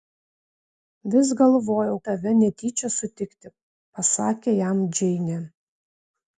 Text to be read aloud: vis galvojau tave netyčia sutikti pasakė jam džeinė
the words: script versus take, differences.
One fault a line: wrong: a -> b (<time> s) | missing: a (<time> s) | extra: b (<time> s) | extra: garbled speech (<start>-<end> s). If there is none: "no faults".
no faults